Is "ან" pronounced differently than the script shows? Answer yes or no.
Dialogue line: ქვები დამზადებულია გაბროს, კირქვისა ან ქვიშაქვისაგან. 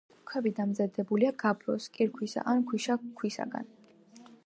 no